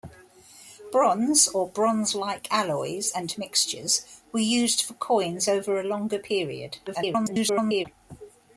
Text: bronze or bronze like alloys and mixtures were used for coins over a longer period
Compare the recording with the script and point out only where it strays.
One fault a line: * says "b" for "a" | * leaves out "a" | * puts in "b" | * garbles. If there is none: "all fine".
* garbles